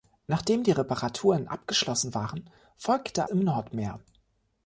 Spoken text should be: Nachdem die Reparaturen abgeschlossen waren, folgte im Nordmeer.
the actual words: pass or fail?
pass